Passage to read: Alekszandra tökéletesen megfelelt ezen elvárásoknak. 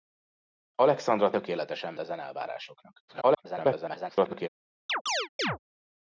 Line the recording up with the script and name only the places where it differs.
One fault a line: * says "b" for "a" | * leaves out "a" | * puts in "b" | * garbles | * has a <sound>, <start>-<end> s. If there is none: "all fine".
* leaves out "megfelelt"
* garbles
* has a chirp, 4.9-5.6 s